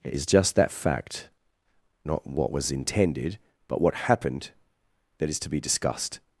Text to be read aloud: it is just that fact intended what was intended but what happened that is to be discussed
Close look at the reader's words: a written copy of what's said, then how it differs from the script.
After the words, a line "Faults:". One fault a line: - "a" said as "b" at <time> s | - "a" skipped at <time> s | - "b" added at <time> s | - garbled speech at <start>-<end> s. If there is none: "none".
it is just that fact not what was intended but what happened that is to be discussed
Faults:
- "intended" said as "not" at 2.0 s